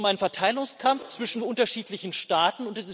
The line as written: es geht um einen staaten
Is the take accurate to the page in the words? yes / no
no